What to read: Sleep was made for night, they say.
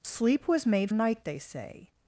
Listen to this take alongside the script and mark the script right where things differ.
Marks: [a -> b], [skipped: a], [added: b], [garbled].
Sleep was made [skipped: for] night, they say.